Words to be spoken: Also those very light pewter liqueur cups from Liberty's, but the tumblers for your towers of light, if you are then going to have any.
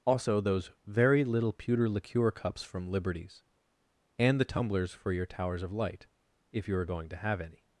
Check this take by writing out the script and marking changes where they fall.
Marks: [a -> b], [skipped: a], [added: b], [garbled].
Also those very [light -> little] pewter liqueur cups from Liberty's, [but -> and] the tumblers for your towers of light, if you are [skipped: then] going to have any.